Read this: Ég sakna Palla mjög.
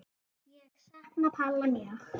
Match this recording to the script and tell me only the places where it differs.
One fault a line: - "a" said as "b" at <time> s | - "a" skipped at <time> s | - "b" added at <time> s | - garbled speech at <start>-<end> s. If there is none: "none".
none